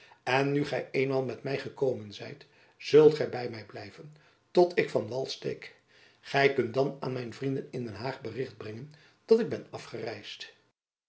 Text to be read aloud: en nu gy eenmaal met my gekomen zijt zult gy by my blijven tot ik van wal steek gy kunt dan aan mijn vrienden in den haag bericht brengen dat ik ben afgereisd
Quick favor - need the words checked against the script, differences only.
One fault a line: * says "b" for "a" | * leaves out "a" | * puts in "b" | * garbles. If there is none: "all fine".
all fine